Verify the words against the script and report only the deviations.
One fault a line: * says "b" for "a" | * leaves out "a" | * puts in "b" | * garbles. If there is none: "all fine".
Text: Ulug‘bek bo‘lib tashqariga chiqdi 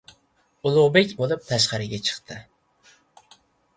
all fine